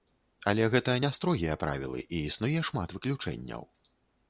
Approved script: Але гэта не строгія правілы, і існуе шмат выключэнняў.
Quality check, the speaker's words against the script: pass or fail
pass